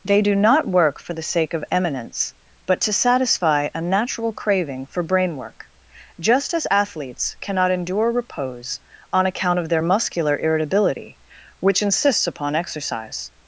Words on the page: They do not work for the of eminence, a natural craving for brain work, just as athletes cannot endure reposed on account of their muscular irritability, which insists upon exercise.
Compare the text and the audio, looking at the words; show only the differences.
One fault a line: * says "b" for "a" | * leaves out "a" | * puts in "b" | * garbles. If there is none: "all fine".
* puts in "sake"
* puts in "but to satisfy"
* says "repose" for "reposed"